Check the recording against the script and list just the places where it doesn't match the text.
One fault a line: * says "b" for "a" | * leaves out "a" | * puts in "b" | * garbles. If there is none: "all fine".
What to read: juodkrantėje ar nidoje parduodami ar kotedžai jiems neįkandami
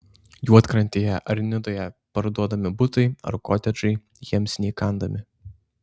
* puts in "butai"